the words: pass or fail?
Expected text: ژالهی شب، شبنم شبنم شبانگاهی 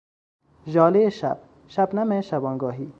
fail